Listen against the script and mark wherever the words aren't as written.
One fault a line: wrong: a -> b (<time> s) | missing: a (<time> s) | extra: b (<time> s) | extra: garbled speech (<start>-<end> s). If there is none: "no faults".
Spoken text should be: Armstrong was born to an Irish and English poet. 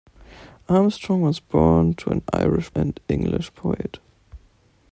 no faults